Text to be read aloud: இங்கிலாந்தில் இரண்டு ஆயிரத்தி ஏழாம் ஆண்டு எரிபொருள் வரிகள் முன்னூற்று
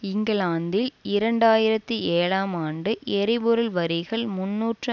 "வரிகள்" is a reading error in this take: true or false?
false